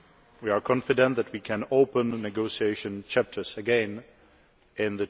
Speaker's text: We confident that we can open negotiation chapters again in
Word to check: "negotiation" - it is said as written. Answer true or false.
true